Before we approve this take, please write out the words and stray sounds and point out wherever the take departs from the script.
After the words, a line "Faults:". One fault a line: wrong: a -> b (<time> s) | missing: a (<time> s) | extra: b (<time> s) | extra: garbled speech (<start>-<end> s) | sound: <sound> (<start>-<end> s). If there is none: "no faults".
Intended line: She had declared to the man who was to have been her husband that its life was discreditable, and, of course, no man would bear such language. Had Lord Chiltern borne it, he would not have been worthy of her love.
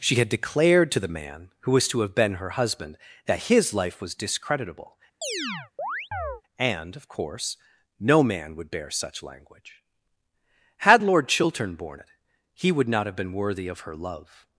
She had declared to the man who was to have been her husband that his life was discreditable, and, of course, no man would bear such language. Had Lord Chiltern borne it, he would not have been worthy of her love.
Faults:
wrong: its -> his (3.5 s)
sound: chirp (5.2-6.4 s)